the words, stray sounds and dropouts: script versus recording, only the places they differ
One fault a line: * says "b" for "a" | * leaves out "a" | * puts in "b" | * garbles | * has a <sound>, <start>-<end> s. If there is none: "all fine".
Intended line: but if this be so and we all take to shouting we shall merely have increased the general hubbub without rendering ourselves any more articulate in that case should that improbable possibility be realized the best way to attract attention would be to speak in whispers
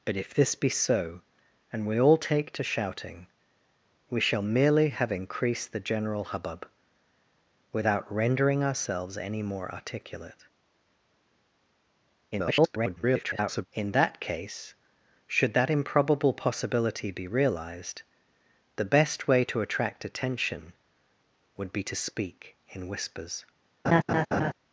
* garbles
* has a laugh, 23.8-24.5 s